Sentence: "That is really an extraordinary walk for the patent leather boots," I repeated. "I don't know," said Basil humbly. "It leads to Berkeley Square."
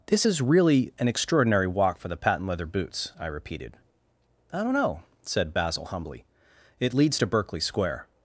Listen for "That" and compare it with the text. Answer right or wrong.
wrong